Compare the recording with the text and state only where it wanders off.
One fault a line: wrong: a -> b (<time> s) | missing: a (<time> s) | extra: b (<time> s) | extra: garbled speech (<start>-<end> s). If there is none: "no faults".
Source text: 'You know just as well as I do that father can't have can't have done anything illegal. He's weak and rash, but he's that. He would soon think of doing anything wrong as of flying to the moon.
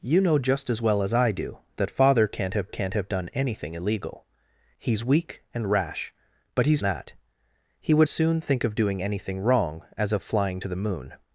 no faults